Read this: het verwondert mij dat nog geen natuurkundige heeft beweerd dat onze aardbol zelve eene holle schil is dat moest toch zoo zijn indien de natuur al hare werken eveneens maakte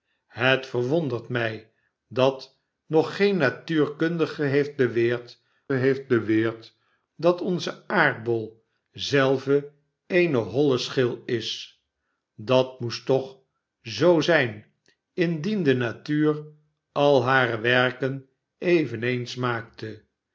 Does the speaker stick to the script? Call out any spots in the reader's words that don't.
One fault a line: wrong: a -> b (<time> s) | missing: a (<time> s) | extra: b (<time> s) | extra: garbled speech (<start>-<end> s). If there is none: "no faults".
extra: heeft beweerd (5.7 s)